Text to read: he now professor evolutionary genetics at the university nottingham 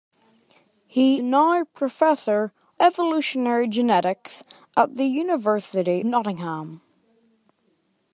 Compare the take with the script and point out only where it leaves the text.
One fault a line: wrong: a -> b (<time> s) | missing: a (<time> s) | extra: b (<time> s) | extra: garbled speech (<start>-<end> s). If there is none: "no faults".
no faults